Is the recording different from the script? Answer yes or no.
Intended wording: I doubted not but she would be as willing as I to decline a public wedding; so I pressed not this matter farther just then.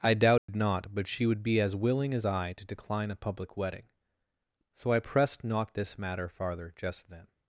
no